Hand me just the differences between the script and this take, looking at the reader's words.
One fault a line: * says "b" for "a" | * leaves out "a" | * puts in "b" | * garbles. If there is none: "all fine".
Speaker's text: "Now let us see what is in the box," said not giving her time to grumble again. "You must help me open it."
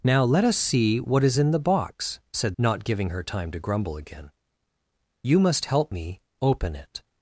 all fine